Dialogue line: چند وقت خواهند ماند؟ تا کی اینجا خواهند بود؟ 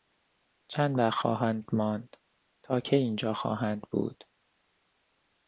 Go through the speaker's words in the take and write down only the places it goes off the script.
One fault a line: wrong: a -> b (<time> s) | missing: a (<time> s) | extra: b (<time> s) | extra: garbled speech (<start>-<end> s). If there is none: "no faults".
no faults